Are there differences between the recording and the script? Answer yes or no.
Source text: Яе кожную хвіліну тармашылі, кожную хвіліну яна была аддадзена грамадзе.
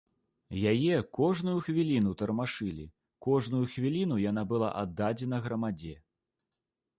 no